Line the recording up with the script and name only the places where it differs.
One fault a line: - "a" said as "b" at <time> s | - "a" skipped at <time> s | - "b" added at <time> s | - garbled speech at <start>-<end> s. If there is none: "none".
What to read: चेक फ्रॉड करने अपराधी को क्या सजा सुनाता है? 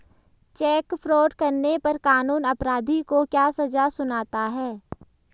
- "पर कानून" added at 1.8 s